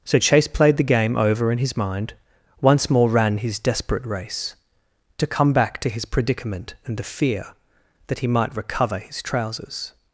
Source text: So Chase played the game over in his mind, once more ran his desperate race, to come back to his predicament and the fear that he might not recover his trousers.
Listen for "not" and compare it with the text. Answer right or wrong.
wrong